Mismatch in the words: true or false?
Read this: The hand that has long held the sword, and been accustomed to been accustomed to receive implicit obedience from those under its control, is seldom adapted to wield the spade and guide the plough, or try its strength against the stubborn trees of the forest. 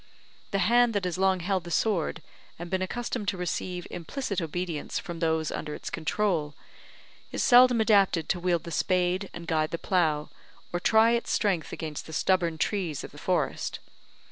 true